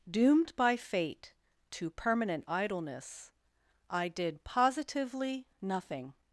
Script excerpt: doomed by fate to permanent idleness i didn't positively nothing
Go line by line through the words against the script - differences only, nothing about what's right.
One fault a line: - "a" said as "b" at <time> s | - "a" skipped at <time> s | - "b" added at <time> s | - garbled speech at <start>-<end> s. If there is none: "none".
- "didn't" said as "did" at 4.1 s